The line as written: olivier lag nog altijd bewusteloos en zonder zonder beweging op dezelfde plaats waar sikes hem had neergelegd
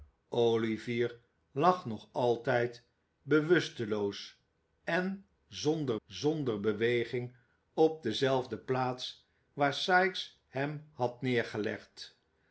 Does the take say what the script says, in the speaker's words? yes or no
yes